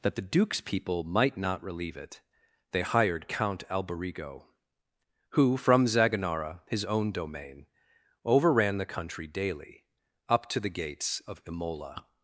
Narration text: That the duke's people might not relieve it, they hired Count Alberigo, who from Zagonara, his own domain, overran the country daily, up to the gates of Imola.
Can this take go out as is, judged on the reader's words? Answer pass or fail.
pass